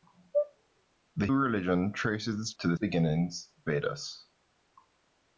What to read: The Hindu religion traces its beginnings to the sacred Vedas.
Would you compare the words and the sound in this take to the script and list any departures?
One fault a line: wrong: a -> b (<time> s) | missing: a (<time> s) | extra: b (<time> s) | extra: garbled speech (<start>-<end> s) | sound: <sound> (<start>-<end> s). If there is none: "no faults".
missing: Hindu (1.3 s)
missing: beginnings (2.5 s)
wrong: sacred -> beginnings (2.7 s)